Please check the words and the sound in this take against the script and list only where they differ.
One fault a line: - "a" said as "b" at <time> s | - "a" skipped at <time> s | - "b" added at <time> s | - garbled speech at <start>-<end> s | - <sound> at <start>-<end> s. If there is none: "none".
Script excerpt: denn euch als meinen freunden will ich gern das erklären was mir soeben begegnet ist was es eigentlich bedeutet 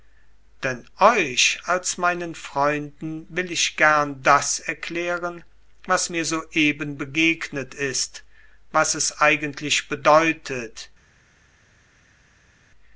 none